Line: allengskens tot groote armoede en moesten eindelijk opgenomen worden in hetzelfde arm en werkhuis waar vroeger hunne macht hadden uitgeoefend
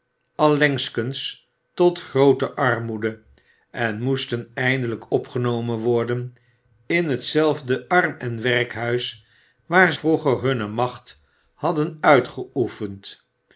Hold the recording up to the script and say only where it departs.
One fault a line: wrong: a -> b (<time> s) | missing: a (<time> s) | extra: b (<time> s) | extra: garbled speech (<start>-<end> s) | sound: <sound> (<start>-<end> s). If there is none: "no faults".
no faults